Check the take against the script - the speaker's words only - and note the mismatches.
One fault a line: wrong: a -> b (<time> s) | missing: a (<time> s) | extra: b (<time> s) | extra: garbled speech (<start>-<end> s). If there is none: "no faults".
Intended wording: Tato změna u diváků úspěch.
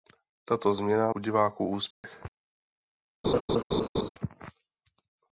no faults